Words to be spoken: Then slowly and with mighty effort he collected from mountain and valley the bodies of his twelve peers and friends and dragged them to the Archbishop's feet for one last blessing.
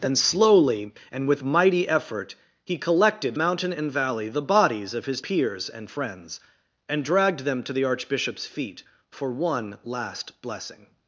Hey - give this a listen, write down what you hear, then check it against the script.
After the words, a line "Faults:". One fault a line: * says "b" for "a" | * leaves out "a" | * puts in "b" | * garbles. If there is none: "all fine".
Then slowly and with mighty effort he collected mountain and valley the bodies of his peers and friends and dragged them to the Archbishop's feet for one last blessing.
Faults:
* leaves out "from"
* leaves out "twelve"